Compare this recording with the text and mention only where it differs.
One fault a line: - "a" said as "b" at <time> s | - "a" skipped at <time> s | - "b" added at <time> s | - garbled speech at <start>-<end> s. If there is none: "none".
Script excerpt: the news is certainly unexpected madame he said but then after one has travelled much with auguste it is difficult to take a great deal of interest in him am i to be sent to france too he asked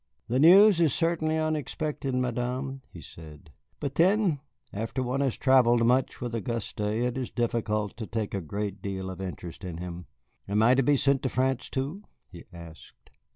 none